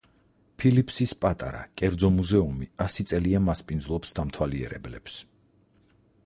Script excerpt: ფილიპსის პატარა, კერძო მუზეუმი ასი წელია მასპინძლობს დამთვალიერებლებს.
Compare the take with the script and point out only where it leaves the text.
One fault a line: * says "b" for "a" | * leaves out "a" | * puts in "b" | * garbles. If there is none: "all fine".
all fine